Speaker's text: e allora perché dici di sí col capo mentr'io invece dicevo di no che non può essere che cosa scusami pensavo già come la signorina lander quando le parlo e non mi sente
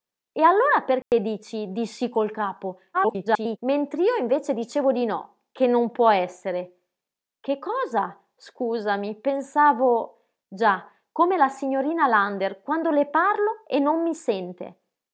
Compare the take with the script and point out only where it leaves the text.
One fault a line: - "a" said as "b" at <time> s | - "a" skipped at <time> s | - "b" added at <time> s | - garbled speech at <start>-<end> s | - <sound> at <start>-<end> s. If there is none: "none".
- dropout at 1.0-1.1 s
- garbled speech at 2.9-3.6 s